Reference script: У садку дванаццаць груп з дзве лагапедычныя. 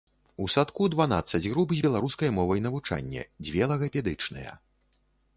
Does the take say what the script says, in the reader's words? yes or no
no